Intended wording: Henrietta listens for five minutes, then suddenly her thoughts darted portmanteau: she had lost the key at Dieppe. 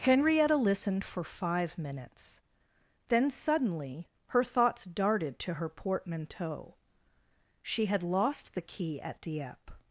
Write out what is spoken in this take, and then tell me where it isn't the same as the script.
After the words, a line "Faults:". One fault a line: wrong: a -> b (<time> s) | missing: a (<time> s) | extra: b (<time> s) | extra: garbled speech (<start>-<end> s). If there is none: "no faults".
Henrietta listened for five minutes, then suddenly her thoughts darted to her portmanteau: she had lost the key at Dieppe.
Faults:
wrong: listens -> listened (0.6 s)
extra: to her (5.4 s)